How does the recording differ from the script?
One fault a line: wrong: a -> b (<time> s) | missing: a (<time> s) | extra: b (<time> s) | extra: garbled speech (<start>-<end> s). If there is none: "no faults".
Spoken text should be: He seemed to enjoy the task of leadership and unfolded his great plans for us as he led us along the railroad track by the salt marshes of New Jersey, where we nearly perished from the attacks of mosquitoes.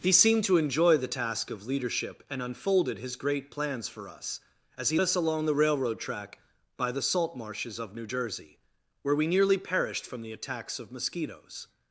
missing: led (5.0 s)